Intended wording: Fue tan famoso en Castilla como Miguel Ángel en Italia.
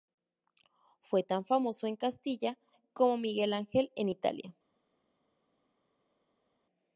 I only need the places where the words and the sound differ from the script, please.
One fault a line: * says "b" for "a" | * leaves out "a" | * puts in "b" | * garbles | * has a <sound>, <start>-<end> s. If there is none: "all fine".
all fine